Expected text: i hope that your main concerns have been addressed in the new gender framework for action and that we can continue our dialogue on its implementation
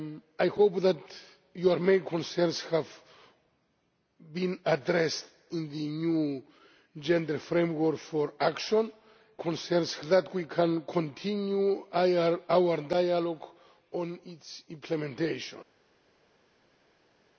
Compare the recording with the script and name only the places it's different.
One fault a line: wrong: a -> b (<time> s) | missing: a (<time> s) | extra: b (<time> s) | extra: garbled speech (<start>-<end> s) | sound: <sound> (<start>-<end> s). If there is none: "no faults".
wrong: and -> concerns (9.4 s)